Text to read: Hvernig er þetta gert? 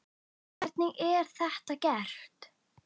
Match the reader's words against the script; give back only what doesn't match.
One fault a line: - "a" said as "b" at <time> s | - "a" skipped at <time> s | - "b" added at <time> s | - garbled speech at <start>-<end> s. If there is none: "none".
none